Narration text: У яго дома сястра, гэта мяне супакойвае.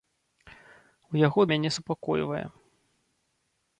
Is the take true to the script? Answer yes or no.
no